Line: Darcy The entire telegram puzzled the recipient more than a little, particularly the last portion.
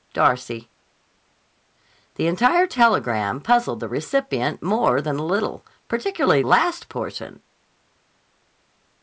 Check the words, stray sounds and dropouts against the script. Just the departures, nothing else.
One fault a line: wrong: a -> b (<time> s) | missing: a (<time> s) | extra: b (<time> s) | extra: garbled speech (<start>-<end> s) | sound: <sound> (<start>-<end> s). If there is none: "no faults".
missing: the (6.4 s)